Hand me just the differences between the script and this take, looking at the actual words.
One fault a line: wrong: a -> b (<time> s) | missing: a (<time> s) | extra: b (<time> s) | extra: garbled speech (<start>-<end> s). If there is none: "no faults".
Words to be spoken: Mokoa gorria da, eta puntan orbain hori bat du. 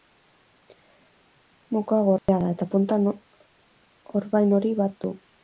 no faults